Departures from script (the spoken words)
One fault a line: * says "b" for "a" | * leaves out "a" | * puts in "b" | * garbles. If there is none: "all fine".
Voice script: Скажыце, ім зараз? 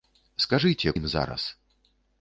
all fine